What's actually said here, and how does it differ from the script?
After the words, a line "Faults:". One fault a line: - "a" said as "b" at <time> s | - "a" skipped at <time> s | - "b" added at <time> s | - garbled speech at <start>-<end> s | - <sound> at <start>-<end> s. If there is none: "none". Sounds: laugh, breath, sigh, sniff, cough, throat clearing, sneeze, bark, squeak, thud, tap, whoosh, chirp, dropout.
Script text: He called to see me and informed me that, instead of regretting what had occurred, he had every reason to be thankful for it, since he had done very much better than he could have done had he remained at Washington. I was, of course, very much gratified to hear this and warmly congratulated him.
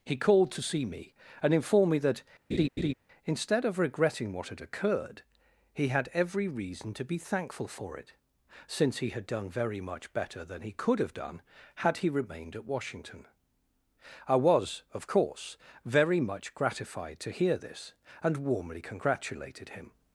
He called to see me and informed me that, instead of regretting what had occurred, he had every reason to be thankful for it, since he had done very much better than he could have done had he remained at Washington. I was, of course, very much gratified to hear this and warmly congratulated him.
Faults:
- laugh at 2.5-2.9 s